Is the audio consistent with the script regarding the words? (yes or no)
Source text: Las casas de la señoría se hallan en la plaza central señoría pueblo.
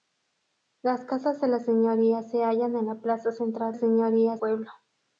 yes